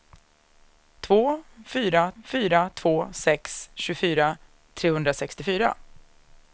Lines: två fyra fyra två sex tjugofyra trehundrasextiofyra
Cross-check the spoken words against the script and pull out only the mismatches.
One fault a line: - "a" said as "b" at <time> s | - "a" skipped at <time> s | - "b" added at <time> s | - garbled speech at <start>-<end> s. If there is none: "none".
none